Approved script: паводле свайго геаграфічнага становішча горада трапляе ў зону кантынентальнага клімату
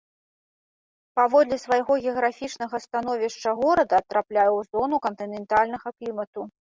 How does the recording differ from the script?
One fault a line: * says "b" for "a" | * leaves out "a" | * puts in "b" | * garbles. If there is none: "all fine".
all fine